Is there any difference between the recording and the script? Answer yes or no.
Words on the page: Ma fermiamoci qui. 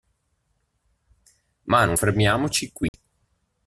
yes